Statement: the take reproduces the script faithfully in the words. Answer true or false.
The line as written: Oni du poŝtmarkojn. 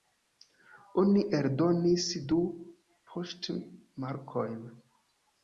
false